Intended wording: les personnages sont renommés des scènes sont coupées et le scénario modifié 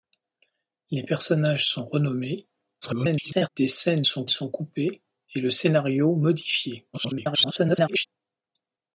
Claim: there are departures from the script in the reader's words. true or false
true